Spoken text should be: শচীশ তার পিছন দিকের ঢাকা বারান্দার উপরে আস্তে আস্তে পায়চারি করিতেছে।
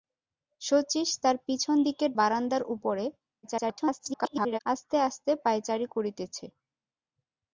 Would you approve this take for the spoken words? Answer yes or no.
no